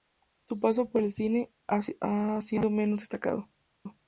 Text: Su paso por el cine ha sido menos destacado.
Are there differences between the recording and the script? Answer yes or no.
no